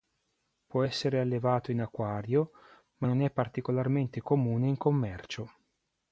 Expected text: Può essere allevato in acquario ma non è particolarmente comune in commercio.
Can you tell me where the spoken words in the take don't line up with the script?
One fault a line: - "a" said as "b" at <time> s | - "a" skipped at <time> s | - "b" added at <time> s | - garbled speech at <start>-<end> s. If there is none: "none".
none